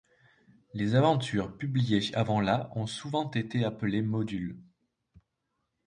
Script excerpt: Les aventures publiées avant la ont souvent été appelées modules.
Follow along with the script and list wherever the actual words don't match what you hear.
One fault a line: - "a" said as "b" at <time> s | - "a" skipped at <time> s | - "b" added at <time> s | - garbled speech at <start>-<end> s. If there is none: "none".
none